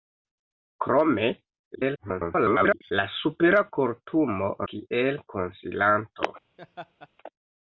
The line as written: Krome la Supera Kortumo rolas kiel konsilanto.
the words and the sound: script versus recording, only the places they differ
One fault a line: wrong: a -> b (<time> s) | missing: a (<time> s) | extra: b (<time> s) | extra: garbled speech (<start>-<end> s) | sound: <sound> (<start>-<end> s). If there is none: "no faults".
extra: garbled speech (1.7-2.9 s)
missing: rolas (4.5 s)
sound: laugh (6.6-7.1 s)